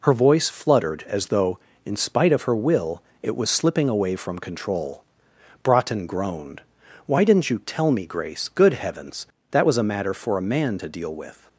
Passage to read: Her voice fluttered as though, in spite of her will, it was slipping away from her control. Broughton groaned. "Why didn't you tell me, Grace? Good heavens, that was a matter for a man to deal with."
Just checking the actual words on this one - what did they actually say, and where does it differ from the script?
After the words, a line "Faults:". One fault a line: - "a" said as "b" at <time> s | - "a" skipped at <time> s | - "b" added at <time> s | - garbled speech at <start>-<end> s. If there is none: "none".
Her voice fluttered as though, in spite of her will, it was slipping away from control. Broughton groaned. "Why didn't you tell me, Grace? Good heavens, that was a matter for a man to deal with."
Faults:
- "her" skipped at 4.4 s